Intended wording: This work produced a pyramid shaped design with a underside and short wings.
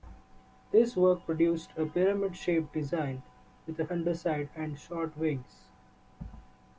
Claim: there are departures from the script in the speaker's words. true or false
false